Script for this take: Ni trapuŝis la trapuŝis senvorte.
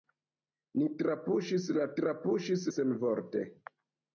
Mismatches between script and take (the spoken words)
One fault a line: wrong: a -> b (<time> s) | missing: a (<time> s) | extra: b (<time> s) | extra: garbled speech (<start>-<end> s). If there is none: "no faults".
no faults